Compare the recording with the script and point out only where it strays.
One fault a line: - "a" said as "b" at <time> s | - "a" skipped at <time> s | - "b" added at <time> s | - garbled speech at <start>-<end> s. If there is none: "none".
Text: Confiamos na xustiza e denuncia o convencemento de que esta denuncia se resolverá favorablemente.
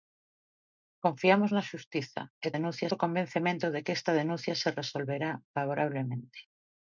none